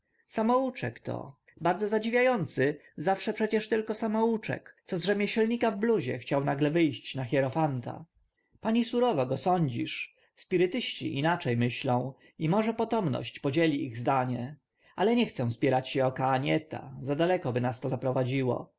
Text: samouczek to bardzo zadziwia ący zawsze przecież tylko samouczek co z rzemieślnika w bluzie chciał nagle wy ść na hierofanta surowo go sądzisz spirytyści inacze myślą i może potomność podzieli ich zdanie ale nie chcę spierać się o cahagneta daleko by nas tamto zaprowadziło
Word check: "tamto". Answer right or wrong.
wrong